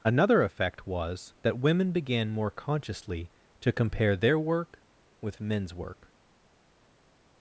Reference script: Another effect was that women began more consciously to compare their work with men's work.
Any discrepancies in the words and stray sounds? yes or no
no